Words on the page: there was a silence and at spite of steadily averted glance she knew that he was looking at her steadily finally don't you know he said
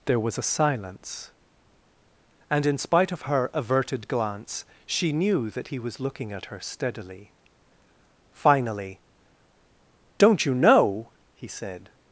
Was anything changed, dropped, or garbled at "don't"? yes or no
no